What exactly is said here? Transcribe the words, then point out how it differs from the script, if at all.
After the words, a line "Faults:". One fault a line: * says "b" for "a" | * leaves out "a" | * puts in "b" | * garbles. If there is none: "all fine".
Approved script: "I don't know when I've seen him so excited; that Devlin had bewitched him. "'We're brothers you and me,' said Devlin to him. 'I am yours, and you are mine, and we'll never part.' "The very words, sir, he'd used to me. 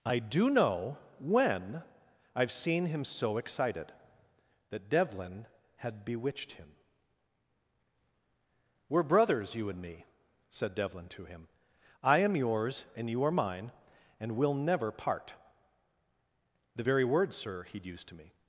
"I do know when I've seen him so excited; that Devlin had bewitched him. "'We're brothers you and me,' said Devlin to him. 'I am yours, and you are mine, and we'll never part.' "The very words, sir, he'd used to me.
Faults:
* says "do" for "don't"